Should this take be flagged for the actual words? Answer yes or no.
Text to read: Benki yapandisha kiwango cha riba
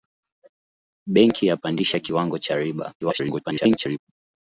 yes